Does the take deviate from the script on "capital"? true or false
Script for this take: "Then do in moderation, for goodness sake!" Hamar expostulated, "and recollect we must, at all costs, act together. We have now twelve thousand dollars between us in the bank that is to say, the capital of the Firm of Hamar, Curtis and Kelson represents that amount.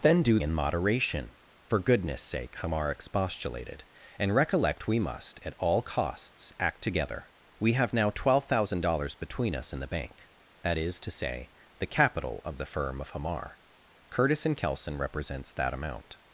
false